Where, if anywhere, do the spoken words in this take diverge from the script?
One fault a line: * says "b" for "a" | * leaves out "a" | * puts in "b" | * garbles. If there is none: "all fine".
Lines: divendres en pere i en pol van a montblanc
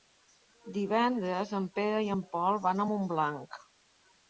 all fine